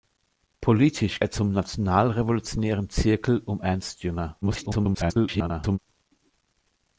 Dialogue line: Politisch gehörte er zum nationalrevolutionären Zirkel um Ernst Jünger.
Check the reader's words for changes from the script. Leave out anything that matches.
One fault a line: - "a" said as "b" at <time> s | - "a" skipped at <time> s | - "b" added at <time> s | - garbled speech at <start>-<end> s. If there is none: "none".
- "gehörte" skipped at 1.2 s
- garbled speech at 4.4-5.8 s